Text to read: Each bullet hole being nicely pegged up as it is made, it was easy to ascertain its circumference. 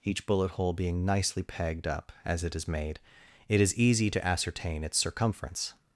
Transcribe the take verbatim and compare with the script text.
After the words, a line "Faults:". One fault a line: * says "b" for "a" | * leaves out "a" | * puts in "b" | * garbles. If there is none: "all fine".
Each bullet hole being nicely pegged up as it is made, it is easy to ascertain its circumference.
Faults:
* says "is" for "was"